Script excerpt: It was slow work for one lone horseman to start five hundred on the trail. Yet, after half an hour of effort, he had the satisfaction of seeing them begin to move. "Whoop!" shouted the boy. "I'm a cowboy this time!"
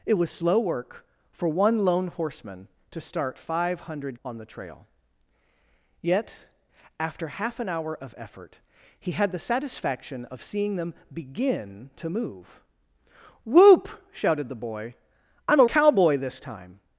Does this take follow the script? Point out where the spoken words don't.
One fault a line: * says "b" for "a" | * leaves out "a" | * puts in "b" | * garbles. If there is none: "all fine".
all fine